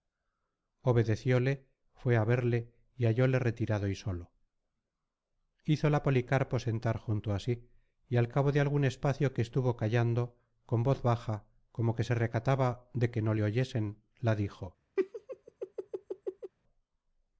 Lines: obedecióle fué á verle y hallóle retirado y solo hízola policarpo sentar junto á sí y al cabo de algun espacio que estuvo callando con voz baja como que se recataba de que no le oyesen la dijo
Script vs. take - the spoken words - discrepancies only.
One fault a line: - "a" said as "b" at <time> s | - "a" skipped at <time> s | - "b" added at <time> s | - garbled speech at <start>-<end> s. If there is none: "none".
none